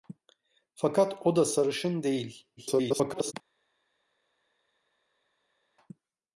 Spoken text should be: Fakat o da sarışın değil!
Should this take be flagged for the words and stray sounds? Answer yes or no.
yes